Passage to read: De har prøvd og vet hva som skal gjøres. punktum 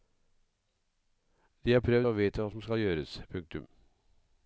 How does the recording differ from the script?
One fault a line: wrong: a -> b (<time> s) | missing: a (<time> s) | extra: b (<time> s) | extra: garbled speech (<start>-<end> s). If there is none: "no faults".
no faults